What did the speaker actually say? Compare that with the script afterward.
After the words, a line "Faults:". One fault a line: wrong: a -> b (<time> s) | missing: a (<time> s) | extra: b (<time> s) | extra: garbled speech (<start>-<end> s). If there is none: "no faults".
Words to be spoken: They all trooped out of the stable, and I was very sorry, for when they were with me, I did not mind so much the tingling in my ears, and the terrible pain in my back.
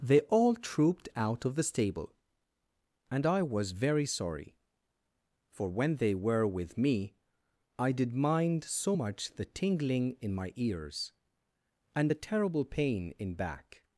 They all trooped out of the stable, and I was very sorry, for when they were with me, I did mind so much the tingling in my ears, and the terrible pain in back.
Faults:
missing: not (8.1 s)
missing: my (13.4 s)